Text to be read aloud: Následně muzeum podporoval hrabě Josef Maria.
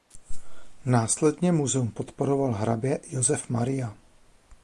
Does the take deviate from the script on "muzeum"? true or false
false